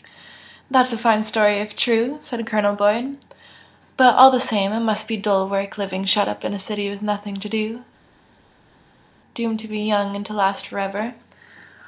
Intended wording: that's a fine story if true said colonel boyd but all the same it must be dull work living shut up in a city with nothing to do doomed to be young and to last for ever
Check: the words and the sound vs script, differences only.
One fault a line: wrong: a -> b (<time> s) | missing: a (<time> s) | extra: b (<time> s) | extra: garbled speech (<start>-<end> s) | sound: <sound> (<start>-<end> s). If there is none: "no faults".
no faults